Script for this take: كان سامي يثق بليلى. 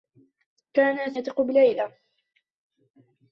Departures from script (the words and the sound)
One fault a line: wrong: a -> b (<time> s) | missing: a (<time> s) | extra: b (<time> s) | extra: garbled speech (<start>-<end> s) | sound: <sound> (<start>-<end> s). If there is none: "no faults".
missing: سامي (1.1 s)